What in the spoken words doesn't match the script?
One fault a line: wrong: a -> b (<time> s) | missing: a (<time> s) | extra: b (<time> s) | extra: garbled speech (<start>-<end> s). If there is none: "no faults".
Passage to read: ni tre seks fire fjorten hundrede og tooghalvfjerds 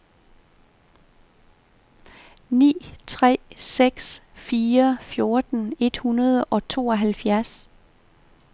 extra: et (5.8 s)